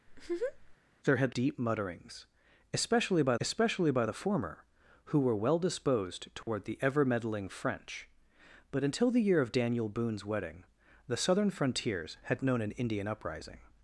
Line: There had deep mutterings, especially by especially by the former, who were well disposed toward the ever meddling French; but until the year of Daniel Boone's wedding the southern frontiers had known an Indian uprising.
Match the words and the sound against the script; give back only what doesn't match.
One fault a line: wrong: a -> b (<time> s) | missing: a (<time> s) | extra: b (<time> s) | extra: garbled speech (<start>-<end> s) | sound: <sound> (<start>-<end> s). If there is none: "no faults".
sound: laugh (0.1-0.8 s)
sound: dropout (6.4-6.5 s)